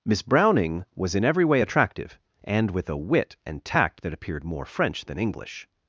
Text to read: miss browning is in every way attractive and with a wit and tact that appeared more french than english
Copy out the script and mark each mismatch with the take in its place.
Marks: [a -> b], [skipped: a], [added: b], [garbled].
miss browning [is -> was] in every way attractive and with a wit and tact that appeared more french than english